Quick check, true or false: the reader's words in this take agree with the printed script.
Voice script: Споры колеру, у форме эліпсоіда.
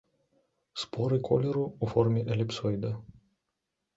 true